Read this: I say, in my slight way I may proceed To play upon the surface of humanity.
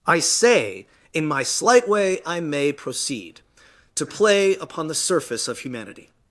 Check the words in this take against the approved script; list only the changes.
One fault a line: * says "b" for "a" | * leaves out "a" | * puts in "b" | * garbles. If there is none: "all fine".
all fine